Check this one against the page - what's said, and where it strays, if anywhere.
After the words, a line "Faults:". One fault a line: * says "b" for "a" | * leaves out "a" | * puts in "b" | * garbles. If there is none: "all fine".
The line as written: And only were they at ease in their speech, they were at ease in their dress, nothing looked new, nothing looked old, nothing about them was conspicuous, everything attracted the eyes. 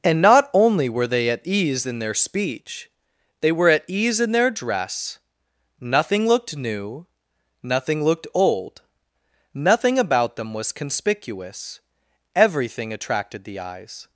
And not only were they at ease in their speech, they were at ease in their dress, nothing looked new, nothing looked old, nothing about them was conspicuous, everything attracted the eyes.
Faults:
* puts in "not"